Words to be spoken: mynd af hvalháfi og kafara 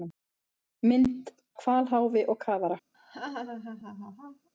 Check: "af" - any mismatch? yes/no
yes